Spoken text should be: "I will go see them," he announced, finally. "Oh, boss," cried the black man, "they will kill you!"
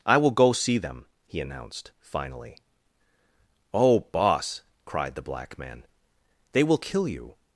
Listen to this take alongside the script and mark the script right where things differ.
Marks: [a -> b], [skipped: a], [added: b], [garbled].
"I will go see them," he announced, finally. "Oh, boss," cried the black man, "they will kill you!"